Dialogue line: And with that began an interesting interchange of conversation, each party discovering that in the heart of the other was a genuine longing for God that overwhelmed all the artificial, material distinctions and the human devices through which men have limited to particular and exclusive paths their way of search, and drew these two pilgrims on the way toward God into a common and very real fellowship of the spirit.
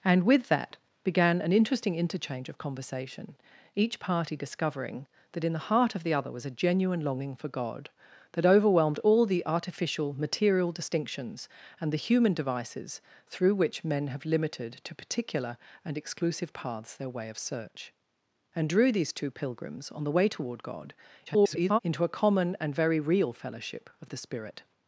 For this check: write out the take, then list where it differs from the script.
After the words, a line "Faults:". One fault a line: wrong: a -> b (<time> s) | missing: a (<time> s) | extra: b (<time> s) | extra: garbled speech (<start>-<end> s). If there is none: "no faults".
And with that began an interesting interchange of conversation, each party discovering that in the heart of the other was a genuine longing for God that overwhelmed all the artificial, material distinctions and the human devices through which men have limited to particular and exclusive paths their way of search, and drew these two pilgrims on the way toward God [garbled] into a common and very real fellowship of the spirit.
Faults:
extra: garbled speech (21.3-21.8 s)